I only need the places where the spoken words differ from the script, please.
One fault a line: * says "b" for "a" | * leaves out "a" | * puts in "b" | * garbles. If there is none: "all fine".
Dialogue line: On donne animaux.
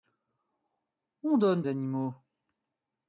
all fine